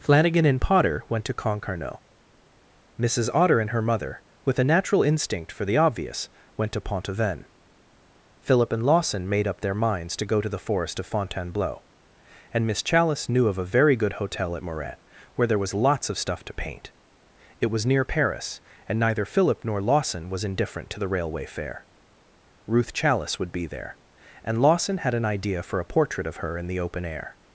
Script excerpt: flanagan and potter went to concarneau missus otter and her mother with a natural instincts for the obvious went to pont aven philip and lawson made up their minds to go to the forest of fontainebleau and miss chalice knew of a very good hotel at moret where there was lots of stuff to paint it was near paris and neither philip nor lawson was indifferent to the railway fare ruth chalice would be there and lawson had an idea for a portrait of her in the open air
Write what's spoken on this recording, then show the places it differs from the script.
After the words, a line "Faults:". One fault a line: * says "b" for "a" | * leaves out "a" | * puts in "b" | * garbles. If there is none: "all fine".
flanagan and potter went to concarneau missus otter and her mother with a natural instinct for the obvious went to pont aven philip and lawson made up their minds to go to the forest of fontainebleau and miss chalice knew of a very good hotel at moret where there was lots of stuff to paint it was near paris and neither philip nor lawson was indifferent to the railway fare ruth chalice would be there and lawson had an idea for a portrait of her in the open air
Faults:
* says "instinct" for "instincts"